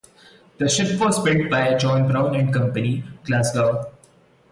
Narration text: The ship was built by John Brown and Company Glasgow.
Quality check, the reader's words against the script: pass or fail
pass